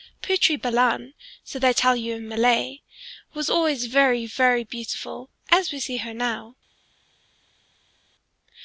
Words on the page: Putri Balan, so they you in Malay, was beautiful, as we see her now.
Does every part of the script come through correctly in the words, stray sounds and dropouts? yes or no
no